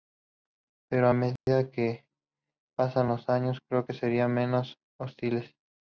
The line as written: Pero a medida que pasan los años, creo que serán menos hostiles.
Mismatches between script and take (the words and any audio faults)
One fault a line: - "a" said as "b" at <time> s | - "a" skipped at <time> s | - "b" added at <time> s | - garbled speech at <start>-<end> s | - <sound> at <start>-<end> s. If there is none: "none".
- dropout at 1.4-1.5 s